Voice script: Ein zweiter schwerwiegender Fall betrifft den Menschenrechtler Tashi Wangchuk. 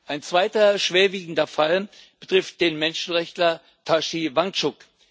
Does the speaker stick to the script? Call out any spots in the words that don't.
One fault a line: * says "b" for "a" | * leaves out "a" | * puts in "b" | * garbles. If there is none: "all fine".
all fine